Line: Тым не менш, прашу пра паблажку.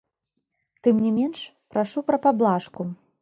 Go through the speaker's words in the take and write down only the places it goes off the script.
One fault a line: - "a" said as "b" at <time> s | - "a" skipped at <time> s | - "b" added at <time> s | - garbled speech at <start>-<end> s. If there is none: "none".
none